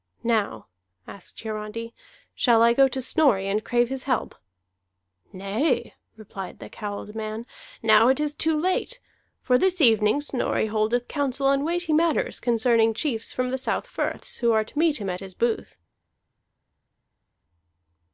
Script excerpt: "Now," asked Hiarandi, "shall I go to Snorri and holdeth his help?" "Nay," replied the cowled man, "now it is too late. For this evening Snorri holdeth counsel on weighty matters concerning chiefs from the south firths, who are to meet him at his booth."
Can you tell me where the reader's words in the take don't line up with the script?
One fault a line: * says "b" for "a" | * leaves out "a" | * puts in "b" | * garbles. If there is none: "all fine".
* says "crave" for "holdeth"